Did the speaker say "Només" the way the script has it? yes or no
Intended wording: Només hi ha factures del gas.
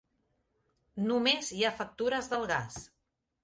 yes